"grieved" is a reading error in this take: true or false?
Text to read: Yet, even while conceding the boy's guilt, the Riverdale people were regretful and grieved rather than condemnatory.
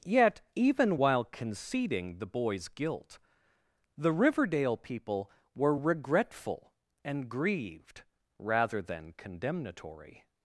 false